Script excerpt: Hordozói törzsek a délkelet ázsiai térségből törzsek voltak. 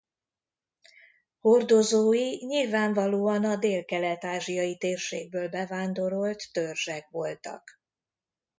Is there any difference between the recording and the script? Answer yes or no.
yes